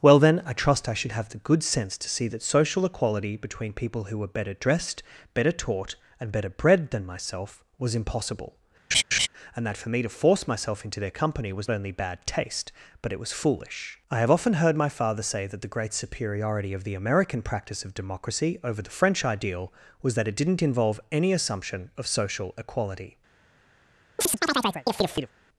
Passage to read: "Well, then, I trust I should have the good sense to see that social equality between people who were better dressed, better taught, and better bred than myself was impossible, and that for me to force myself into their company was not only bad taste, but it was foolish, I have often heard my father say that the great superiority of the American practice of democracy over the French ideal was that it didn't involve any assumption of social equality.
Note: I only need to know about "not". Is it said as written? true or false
false